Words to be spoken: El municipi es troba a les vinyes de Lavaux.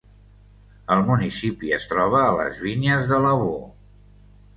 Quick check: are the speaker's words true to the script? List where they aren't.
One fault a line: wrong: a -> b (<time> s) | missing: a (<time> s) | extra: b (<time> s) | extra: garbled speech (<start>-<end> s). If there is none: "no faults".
no faults